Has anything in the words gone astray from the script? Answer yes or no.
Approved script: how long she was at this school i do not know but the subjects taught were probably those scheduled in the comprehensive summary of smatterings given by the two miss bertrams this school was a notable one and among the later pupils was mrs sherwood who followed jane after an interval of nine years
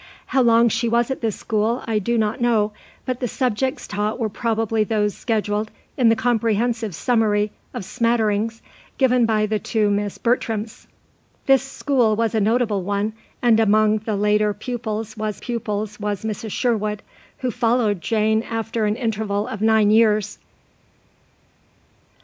yes